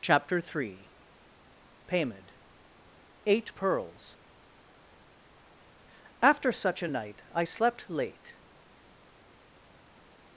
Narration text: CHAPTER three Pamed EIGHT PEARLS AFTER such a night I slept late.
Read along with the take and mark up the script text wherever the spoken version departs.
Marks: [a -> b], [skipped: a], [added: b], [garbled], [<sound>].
CHAPTER three Pamed EIGHT PEARLS AFTER such a night I slept late.